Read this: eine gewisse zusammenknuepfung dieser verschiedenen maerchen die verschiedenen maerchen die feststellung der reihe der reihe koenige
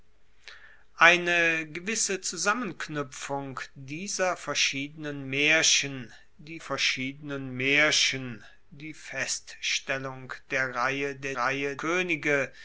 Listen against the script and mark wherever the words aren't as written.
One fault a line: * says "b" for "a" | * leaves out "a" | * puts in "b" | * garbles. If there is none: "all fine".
all fine